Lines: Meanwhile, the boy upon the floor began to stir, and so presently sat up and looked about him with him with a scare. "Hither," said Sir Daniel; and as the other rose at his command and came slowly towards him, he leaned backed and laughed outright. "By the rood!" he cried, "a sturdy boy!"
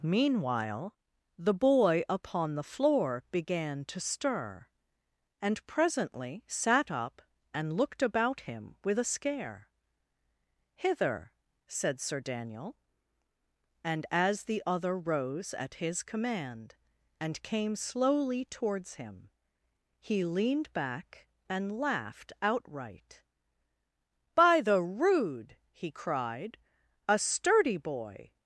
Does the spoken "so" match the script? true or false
false